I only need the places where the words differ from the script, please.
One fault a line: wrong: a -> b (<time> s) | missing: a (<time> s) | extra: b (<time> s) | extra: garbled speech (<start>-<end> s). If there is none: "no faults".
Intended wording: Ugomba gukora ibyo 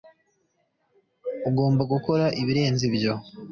extra: ibirenze (2.4 s)